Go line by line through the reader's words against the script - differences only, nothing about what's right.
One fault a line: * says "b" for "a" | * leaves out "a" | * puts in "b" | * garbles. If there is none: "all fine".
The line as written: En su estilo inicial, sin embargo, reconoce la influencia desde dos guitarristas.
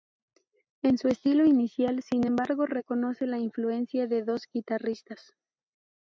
* says "de" for "desde"